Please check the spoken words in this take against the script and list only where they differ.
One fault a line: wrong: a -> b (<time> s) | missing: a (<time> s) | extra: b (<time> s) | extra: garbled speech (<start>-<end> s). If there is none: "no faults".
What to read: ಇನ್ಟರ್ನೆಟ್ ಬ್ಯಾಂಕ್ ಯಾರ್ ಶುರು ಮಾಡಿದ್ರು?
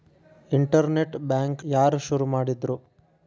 no faults